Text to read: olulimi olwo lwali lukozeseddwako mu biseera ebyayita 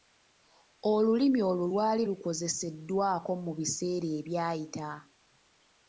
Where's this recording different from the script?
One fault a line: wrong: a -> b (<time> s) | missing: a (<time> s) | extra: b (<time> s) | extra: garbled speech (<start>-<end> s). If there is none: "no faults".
no faults